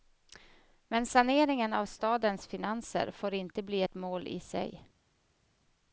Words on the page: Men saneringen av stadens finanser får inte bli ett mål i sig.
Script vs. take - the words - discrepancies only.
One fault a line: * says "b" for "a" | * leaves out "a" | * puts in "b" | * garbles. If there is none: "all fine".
all fine